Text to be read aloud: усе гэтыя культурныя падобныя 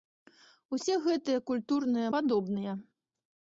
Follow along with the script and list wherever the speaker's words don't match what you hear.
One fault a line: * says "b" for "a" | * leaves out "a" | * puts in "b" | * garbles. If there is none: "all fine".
all fine